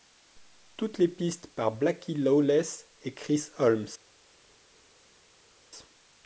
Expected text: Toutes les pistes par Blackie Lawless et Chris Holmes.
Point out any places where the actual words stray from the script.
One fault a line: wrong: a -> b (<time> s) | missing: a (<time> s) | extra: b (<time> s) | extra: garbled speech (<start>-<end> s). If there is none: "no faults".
no faults